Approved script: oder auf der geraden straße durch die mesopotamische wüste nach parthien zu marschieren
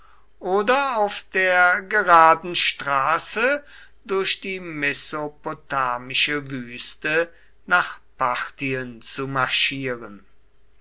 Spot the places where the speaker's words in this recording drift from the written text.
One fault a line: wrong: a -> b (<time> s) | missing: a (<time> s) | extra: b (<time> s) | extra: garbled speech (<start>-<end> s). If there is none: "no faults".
no faults